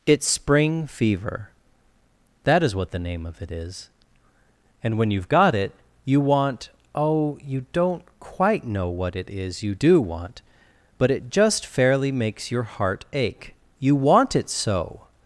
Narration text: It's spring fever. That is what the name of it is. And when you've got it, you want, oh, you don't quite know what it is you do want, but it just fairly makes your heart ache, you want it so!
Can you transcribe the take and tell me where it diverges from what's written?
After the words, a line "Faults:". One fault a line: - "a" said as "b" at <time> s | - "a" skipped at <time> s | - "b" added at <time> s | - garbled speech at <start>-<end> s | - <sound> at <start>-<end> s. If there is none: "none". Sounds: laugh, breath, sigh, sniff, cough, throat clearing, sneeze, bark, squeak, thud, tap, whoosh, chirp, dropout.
It's spring fever. That is what the name of it is. And when you've got it, you want, oh, you don't quite know what it is you do want, but it just fairly makes your heart ache, you want it so!
Faults:
none